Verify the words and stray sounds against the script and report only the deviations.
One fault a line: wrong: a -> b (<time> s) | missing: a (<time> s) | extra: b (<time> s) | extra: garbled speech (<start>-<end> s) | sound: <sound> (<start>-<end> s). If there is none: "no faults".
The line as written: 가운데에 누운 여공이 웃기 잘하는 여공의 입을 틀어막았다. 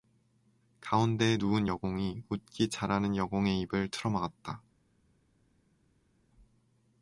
no faults